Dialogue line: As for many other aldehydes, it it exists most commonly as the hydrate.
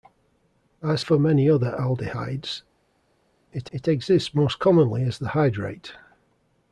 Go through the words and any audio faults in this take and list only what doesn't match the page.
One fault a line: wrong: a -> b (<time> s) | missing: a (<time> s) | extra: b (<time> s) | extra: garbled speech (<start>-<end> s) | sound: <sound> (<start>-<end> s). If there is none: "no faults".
no faults